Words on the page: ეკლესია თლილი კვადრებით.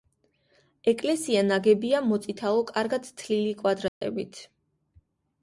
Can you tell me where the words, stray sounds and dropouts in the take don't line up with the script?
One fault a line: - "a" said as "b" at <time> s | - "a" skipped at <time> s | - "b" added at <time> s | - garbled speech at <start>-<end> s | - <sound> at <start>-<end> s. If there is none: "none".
- "ნაგებია მოწითალო კარგად" added at 1.5 s
- dropout at 3.9-4.0 s